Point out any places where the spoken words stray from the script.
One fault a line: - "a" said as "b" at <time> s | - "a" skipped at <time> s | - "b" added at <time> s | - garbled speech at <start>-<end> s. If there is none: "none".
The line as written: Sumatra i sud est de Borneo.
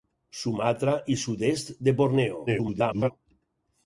- garbled speech at 2.5-3.1 s